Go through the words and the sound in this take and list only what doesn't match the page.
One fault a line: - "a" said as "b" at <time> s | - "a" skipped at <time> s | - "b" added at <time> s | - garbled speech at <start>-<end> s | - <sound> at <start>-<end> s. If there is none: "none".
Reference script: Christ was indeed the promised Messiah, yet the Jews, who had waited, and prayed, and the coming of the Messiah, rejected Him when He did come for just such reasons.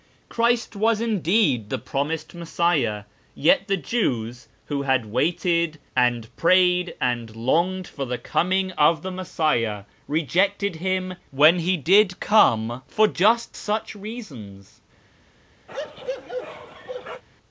- "longed for" added at 7.3 s
- bark at 15.7-17.2 s